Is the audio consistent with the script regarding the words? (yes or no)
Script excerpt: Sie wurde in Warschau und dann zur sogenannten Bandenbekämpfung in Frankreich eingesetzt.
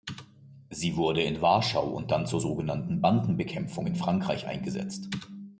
yes